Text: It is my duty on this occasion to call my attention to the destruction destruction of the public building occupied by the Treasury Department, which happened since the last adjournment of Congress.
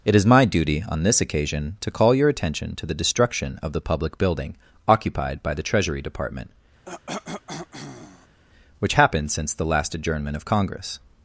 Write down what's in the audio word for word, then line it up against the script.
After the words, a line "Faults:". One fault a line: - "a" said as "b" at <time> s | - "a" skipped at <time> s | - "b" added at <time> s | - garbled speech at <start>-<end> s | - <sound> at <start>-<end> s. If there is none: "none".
It is my duty on this occasion to call your attention to the destruction of the public building occupied by the Treasury Department, which happened since the last adjournment of Congress.
Faults:
- "my" said as "your" at 2.1 s
- "destruction" skipped at 3.6 s
- cough at 6.9-8.4 s